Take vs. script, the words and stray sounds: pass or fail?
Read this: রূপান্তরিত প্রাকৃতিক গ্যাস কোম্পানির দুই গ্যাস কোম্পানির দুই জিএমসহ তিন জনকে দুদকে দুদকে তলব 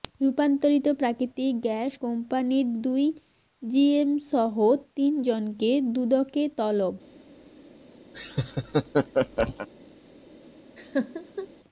fail